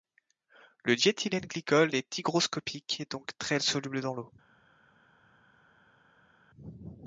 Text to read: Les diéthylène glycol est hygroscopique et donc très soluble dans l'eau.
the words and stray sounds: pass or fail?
fail